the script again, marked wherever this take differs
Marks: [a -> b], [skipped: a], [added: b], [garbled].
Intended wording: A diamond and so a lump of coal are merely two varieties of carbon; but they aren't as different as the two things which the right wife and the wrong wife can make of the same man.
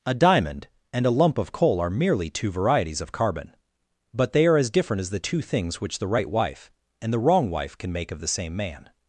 A diamond and [skipped: so] a lump of coal are merely two varieties of carbon; but they [aren't -> are] as different as the two things which the right wife and the wrong wife can make of the same man.